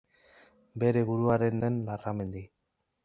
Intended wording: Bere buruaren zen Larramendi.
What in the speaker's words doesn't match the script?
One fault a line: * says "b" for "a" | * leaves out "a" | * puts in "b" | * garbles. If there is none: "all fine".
all fine